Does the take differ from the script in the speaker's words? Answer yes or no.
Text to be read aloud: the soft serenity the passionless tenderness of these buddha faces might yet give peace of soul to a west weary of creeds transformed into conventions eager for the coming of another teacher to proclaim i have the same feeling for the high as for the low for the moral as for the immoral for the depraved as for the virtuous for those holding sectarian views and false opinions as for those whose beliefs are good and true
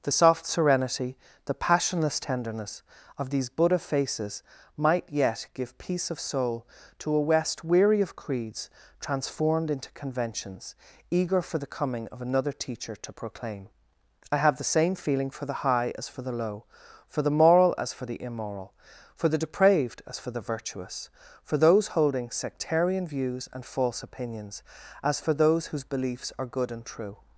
no